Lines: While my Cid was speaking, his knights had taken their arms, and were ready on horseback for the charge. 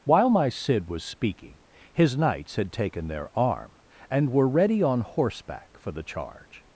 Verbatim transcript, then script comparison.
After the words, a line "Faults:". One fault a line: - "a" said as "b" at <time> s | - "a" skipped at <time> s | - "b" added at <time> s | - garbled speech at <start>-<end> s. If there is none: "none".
While my Cid was speaking, his knights had taken their arm, and were ready on horseback for the charge.
Faults:
- "arms" said as "arm" at 3.4 s